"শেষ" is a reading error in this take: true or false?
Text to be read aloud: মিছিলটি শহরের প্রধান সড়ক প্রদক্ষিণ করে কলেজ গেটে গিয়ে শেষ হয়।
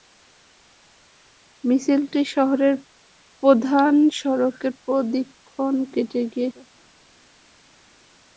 true